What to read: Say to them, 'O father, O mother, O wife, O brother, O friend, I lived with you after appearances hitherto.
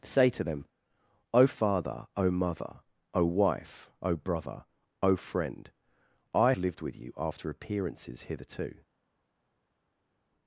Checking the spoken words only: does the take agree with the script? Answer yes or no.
yes